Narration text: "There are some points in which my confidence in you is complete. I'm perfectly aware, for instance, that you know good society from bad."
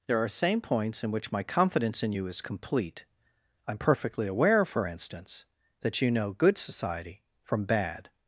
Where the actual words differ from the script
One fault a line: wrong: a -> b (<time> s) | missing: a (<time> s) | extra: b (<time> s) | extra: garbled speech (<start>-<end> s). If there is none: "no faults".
wrong: some -> same (0.3 s)